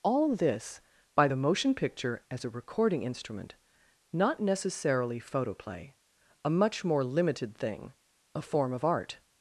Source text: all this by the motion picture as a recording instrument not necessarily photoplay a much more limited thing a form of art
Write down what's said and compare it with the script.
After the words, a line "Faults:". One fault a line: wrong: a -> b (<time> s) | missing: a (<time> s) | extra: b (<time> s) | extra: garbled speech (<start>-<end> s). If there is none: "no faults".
all this by the motion picture as a recording instrument not necessarily photoplay a much more limited thing a form of art
Faults:
no faults